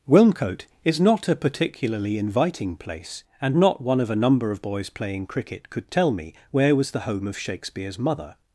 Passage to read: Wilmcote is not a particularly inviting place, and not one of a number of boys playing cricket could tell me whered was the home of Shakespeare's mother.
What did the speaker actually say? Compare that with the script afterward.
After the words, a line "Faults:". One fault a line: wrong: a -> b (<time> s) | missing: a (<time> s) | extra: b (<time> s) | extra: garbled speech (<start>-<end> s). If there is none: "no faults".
Wilmcote is not a particularly inviting place, and not one of a number of boys playing cricket could tell me where was the home of Shakespeare's mother.
Faults:
wrong: whered -> where (6.5 s)